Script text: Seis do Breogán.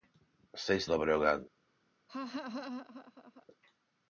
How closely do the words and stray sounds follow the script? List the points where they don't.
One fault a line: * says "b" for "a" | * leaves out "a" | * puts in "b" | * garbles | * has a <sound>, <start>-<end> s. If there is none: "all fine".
* has a laugh, 2.1-3.5 s